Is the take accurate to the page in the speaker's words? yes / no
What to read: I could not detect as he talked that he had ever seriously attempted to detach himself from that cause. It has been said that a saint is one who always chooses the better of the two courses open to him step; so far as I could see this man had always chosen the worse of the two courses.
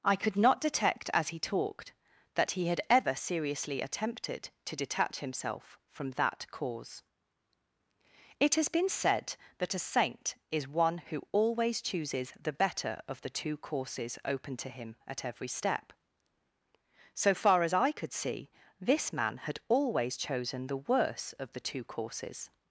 no